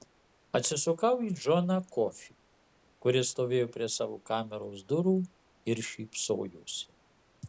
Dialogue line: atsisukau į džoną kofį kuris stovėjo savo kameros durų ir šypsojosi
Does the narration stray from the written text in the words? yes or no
yes